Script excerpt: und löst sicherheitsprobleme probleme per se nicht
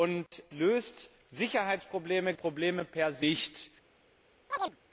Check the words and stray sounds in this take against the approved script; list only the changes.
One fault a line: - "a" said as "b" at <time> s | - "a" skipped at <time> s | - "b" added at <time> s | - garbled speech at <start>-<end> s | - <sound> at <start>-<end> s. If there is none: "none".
- dropout at 0.3-0.3 s
- chirp at 4.5-4.8 s